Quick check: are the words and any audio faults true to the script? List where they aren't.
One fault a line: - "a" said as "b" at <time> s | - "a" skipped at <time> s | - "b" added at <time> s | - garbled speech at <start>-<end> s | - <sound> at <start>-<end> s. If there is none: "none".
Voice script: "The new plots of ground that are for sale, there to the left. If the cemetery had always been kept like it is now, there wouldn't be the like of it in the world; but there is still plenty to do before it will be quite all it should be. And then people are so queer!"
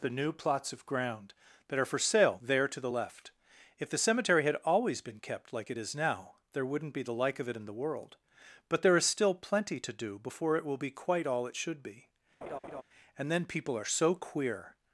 - laugh at 12.4-12.8 s